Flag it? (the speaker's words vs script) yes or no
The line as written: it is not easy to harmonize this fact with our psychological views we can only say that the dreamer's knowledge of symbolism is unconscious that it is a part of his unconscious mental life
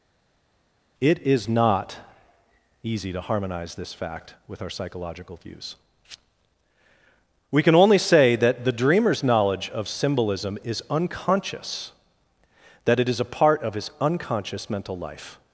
no